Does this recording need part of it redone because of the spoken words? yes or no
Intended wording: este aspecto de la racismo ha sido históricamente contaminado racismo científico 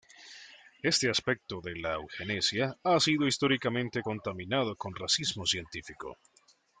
yes